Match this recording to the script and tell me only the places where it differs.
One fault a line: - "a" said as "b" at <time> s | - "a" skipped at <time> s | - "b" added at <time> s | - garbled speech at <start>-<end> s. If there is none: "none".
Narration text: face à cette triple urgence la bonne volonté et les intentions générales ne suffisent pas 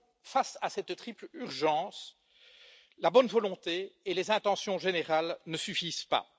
none